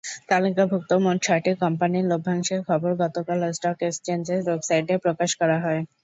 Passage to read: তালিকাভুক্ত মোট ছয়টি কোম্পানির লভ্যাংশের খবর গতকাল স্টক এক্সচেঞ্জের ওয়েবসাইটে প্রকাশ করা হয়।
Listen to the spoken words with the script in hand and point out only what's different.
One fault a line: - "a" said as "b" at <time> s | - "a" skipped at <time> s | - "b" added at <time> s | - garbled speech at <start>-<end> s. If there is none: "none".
none